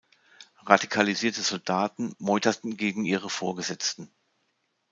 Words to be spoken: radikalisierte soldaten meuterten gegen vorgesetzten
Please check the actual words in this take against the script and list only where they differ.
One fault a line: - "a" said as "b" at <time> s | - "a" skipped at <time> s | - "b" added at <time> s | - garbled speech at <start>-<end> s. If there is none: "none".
- "ihre" added at 3.0 s